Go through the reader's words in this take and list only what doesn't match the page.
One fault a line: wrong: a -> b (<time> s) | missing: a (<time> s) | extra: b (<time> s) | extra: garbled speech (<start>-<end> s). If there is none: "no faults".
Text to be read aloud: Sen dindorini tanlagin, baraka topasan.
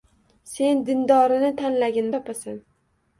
missing: baraka (2.1 s)